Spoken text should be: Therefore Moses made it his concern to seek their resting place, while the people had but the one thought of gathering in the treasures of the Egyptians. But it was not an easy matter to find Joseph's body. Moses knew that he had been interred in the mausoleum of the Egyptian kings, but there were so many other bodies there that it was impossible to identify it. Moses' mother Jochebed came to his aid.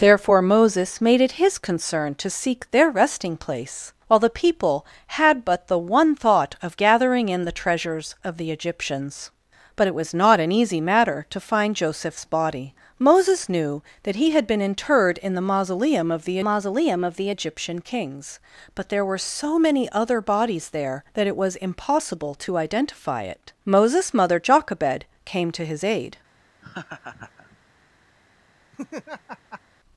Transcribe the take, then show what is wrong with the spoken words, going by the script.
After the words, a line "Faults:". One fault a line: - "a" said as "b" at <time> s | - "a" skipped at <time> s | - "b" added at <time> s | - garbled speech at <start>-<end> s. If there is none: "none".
Therefore Moses made it his concern to seek their resting place, while the people had but the one thought of gathering in the treasures of the Egyptians. But it was not an easy matter to find Joseph's body. Moses knew that he had been interred in the mausoleum of the mausoleum of the Egyptian kings, but there were so many other bodies there that it was impossible to identify it. Moses' mother Jochebed came to his aid.
Faults:
- "mausoleum of the" added at 16.4 s